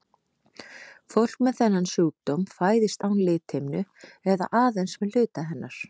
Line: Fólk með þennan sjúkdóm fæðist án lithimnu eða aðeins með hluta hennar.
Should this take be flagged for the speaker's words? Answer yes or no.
no